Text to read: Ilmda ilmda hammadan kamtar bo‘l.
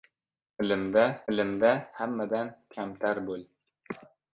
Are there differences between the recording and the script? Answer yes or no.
no